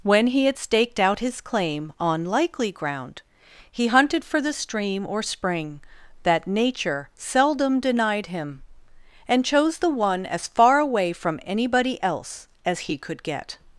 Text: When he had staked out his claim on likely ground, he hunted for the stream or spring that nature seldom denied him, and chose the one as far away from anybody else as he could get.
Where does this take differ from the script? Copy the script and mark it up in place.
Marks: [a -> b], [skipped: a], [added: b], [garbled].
When he had staked out his claim on likely ground, he hunted for the stream or spring that nature seldom denied him, and chose the one as far away from anybody else as he could get.